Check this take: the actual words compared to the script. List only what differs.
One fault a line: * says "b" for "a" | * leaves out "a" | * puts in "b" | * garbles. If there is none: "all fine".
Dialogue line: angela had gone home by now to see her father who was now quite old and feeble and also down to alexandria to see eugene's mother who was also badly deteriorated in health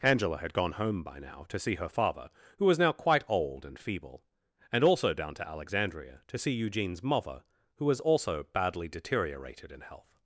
all fine